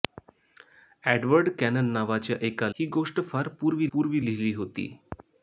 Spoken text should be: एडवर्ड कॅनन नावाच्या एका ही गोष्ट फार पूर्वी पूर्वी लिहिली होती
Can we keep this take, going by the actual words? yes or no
yes